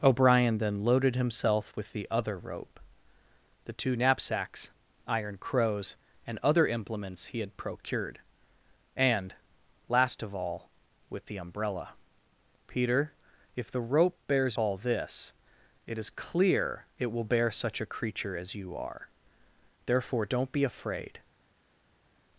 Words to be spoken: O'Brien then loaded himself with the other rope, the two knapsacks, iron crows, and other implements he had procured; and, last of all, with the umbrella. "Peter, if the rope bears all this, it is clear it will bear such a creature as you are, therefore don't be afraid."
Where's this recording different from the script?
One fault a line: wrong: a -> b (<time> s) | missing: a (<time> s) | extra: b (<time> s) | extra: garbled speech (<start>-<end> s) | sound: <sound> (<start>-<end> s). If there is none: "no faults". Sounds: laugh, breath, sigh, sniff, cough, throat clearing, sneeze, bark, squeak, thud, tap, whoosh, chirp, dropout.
no faults